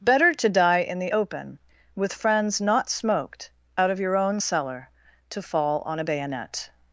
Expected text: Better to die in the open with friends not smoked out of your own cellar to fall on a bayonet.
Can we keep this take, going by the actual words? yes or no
yes